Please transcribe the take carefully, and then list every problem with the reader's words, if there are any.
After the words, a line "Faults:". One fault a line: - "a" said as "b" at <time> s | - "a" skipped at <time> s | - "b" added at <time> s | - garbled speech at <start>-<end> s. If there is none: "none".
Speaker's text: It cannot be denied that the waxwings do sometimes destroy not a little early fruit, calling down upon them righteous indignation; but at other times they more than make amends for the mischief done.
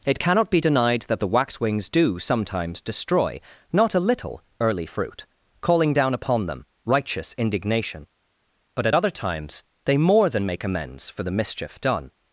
It cannot be denied that the waxwings do sometimes destroy not a little early fruit, calling down upon them righteous indignation; but at other times they more than make amends for the mischief done.
Faults:
none